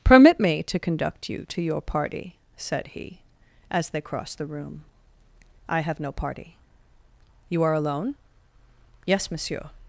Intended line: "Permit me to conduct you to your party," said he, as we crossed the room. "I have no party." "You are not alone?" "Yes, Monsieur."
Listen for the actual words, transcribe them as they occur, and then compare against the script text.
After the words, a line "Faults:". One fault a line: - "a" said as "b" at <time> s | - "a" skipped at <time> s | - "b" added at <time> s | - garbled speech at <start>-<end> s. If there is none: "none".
"Permit me to conduct you to your party," said he, as they crossed the room. "I have no party." "You are alone?" "Yes, Monsieur."
Faults:
- "we" said as "they" at 3.9 s
- "not" skipped at 7.7 s